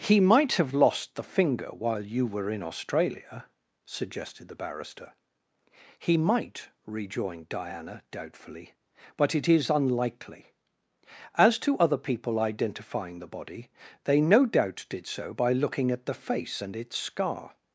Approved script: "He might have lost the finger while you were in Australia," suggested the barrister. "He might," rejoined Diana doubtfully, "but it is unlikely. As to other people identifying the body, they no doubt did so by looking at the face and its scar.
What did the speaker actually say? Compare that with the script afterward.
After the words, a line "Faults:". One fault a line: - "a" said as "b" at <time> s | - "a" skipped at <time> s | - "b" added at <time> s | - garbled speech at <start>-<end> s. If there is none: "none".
"He might have lost the finger while you were in Australia," suggested the barrister. "He might," rejoined Diana doubtfully, "but it is unlikely. As to other people identifying the body, they no doubt did so by looking at the face and its scar.
Faults:
none